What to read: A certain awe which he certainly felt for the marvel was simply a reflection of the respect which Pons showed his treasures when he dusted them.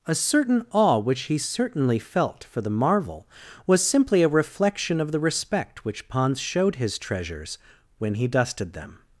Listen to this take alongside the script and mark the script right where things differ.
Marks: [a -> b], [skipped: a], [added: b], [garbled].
A certain awe which he certainly felt for the marvel was simply a reflection of the respect which Pons showed his treasures when he dusted them.